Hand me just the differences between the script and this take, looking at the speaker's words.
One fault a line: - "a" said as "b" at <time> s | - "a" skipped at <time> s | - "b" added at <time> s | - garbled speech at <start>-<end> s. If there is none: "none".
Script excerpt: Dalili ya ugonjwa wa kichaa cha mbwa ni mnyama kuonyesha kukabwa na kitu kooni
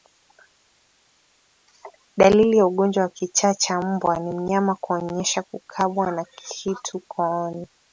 none